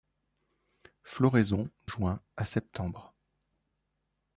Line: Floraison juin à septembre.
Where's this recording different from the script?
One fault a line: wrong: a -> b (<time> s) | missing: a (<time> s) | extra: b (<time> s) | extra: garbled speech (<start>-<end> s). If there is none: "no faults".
no faults